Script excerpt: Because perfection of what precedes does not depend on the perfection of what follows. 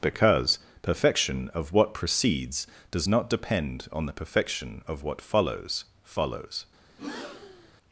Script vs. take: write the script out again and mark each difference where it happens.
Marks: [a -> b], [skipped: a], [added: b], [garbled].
Because perfection of what precedes does not depend on the perfection of what follows. [added: follows]